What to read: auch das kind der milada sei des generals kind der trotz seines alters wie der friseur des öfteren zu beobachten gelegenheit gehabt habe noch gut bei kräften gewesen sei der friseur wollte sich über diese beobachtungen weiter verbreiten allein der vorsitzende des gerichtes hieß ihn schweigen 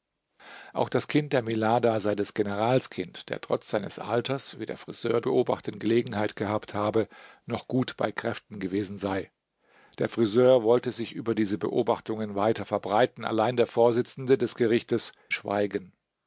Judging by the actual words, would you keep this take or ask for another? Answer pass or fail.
fail